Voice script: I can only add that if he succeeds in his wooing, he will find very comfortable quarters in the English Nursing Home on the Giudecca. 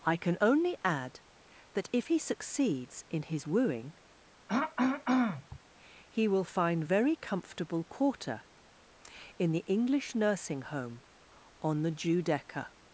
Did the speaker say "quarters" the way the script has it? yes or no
no